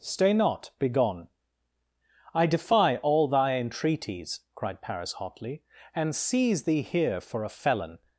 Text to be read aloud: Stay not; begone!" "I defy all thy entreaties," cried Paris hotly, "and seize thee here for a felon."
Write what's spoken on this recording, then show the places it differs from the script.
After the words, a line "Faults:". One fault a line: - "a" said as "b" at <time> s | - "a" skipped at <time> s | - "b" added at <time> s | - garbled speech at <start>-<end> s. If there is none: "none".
Stay not; begone!" "I defy all thy entreaties," cried Paris hotly, "and seize thee here for a felon."
Faults:
none